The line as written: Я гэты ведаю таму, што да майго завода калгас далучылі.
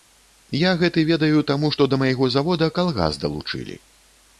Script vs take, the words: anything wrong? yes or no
no